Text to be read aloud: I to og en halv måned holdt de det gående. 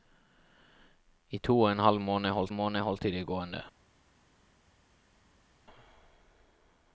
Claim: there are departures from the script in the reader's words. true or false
true